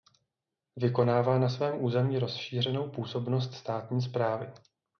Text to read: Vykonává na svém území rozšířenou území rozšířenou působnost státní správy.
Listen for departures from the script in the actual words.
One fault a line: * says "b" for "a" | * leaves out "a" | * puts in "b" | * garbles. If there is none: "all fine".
* leaves out "území rozšířenou"